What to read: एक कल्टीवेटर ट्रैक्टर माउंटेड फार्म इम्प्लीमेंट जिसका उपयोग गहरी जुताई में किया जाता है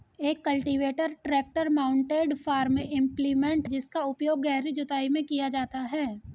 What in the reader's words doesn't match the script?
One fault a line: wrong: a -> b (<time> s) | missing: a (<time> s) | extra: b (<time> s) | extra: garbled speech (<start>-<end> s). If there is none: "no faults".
no faults